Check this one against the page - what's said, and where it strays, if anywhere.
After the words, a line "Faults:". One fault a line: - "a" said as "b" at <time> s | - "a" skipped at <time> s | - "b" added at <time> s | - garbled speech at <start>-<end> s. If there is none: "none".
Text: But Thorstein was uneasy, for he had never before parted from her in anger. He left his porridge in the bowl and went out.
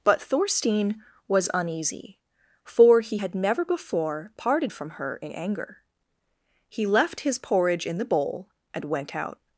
But Thorstein was uneasy, for he had never before parted from her in anger. He left his porridge in the bowl and went out.
Faults:
none